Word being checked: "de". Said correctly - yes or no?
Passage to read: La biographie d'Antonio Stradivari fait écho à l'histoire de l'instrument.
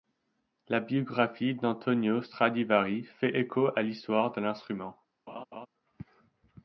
yes